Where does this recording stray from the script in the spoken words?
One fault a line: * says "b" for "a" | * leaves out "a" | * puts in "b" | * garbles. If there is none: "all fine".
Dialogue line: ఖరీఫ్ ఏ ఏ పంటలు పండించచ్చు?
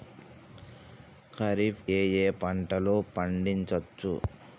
all fine